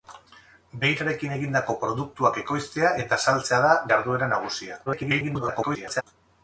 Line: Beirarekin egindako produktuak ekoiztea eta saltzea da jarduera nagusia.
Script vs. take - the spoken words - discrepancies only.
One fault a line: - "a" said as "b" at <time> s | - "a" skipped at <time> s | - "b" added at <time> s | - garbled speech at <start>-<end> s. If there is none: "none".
- garbled speech at 4.9-6.0 s